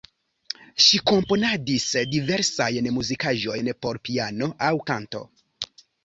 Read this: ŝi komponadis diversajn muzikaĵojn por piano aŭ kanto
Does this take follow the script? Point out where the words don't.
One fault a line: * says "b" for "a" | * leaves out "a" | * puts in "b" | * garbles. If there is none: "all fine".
all fine